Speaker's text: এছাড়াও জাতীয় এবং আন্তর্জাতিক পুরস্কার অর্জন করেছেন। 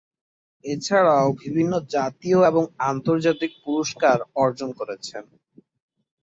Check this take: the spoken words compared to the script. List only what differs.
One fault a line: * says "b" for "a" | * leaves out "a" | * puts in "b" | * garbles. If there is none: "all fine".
* puts in "বিভিন্ন"